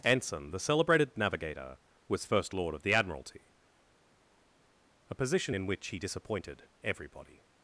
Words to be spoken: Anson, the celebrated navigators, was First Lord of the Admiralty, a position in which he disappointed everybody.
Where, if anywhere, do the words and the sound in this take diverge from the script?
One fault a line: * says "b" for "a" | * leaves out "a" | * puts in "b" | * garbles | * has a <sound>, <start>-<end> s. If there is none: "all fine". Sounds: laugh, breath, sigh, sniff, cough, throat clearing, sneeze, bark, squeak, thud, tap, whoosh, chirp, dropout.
* says "navigator" for "navigators"